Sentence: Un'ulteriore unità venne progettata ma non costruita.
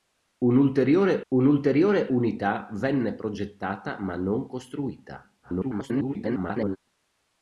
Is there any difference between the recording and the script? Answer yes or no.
yes